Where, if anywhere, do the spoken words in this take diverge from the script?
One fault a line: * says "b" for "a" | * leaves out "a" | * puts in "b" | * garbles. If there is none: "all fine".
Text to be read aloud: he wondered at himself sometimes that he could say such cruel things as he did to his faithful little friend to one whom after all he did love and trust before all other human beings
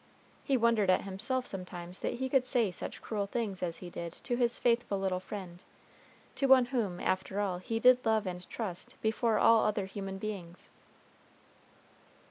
all fine